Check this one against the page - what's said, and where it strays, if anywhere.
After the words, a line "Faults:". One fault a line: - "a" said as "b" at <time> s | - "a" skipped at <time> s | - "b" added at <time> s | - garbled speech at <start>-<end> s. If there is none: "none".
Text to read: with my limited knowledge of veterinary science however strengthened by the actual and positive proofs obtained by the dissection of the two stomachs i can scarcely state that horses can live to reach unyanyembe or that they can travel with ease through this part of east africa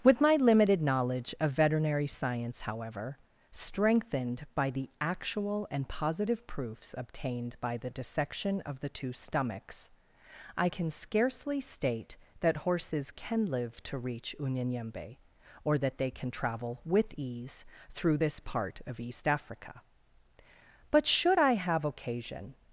with my limited knowledge of veterinary science however strengthened by the actual and positive proofs obtained by the dissection of the two stomachs i can scarcely state that horses can live to reach unyanyembe or that they can travel with ease through this part of east africa but should i have occasion
Faults:
- "but should i have occasion" added at 20.9 s